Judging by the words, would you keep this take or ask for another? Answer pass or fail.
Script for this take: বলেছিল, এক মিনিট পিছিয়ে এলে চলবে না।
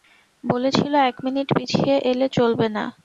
pass